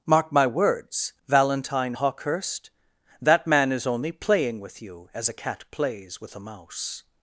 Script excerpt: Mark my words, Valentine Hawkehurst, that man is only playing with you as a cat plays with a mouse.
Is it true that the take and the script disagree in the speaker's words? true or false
false